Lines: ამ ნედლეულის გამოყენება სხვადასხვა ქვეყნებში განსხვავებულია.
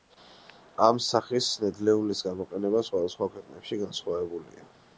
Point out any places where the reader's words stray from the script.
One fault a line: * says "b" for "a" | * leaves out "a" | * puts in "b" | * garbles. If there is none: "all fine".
* puts in "სახის"